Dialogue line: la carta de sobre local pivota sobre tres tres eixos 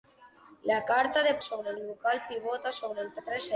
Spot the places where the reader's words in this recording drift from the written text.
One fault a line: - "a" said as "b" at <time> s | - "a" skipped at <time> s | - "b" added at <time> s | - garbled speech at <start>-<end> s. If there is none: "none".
none